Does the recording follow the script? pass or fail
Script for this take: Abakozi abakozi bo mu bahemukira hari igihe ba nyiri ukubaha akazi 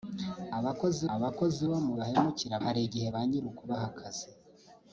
pass